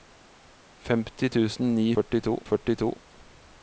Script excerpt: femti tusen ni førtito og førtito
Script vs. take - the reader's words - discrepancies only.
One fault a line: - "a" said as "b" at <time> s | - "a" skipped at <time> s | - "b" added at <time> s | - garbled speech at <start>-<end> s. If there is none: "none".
none